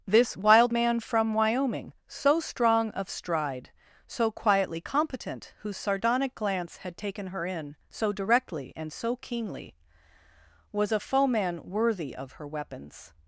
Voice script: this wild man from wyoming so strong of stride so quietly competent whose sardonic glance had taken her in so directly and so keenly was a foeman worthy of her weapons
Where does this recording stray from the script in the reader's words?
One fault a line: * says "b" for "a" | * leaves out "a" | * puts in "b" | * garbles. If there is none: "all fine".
all fine